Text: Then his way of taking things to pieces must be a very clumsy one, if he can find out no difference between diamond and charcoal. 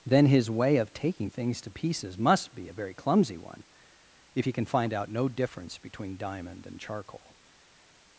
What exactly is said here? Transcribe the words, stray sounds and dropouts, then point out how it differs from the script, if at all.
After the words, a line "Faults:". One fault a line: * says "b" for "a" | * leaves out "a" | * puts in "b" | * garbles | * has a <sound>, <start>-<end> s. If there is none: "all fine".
Then his way of taking things to pieces must be a very clumsy one, if he can find out no difference between diamond and charcoal.
Faults:
all fine